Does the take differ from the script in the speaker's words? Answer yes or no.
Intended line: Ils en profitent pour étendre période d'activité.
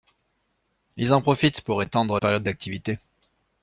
no